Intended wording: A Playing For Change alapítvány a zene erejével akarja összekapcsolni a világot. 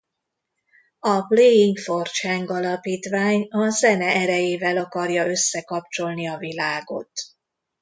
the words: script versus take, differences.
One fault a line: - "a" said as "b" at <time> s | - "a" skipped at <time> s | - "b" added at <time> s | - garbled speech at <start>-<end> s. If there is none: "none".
none